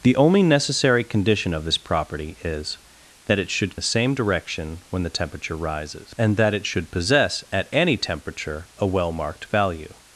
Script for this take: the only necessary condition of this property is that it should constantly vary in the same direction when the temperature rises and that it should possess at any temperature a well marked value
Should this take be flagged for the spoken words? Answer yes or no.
yes